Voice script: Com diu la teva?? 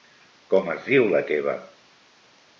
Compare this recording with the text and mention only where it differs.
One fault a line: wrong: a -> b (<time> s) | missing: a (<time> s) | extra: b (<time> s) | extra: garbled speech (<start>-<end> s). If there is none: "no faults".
extra: es (0.8 s)